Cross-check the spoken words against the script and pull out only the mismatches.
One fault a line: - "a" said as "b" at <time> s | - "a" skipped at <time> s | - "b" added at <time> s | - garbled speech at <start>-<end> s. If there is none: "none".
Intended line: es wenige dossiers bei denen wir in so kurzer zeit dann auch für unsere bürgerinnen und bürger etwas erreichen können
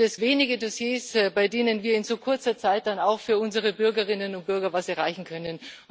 none